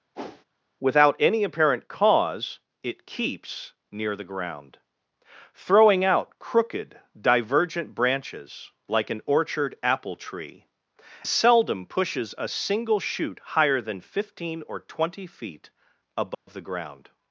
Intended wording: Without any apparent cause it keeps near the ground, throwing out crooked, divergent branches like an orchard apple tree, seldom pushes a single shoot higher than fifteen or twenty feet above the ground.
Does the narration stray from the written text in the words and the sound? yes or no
yes